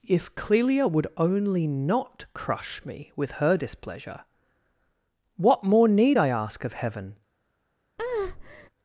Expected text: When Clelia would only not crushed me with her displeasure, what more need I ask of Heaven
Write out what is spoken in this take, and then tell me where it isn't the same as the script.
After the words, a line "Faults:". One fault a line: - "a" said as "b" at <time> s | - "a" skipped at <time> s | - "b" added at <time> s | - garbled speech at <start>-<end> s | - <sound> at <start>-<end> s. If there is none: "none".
If Clelia would only not crush me with her displeasure, what more need I ask of Heaven
Faults:
- "When" said as "If" at 0.1 s
- "crushed" said as "crush" at 2.3 s
- breath at 8.0-8.7 s